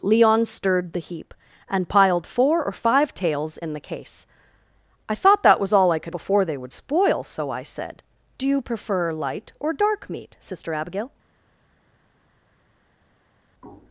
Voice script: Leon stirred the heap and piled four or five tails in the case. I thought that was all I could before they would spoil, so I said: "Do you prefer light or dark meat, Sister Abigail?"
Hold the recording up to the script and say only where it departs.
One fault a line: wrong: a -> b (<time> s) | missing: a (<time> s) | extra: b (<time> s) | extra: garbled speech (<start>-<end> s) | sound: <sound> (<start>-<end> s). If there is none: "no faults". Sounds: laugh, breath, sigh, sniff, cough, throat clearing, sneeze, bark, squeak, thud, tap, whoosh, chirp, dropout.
no faults